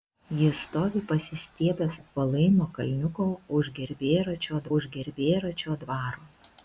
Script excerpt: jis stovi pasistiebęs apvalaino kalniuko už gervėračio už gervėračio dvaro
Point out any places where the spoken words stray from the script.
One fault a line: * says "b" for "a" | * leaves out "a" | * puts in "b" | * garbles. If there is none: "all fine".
all fine